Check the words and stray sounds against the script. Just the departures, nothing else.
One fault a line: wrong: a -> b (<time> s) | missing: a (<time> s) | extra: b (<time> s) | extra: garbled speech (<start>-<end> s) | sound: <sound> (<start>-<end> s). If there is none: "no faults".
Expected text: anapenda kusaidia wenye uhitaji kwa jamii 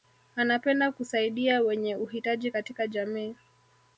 wrong: kwa -> katika (2.5 s)